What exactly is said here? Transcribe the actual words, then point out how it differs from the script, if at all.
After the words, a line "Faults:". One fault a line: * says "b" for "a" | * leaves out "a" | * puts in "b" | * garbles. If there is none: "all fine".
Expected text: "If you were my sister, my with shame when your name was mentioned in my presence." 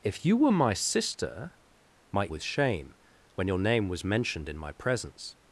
"If you were my sister, my with shame when your name was mentioned in my presence."
Faults:
all fine